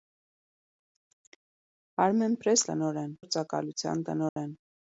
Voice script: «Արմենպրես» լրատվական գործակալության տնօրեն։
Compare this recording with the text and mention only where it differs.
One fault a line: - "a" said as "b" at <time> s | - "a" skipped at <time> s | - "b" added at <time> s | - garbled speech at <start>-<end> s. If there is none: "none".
- "լրատվական" said as "տնօրեն" at 2.7 s